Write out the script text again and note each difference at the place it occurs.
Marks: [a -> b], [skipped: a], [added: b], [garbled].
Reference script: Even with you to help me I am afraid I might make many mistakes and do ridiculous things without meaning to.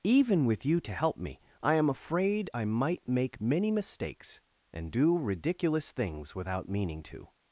Even with you to help me I am afraid I might make many mistakes and do ridiculous things without meaning to.